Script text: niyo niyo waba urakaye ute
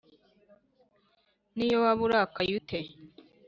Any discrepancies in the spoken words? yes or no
yes